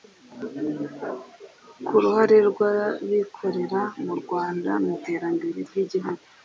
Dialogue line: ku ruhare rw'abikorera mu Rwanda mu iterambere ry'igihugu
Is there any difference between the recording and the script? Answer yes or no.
no